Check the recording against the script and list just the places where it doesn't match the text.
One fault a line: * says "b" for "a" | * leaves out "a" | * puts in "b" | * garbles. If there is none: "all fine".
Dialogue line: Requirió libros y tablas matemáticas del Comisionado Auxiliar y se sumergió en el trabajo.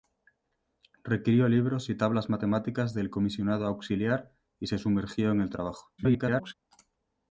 * garbles